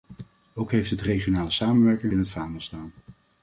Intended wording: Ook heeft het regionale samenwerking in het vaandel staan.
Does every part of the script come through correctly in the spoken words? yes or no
yes